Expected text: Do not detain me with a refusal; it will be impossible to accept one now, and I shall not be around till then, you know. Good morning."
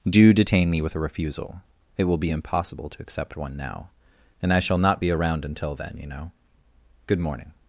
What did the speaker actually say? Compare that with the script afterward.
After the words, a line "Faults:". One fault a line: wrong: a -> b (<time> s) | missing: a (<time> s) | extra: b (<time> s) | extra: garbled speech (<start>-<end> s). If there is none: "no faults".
Do detain me with a refusal; it will be impossible to accept one now, and I shall not be around until then, you know. Good morning."
Faults:
missing: not (0.3 s)
wrong: till -> until (5.4 s)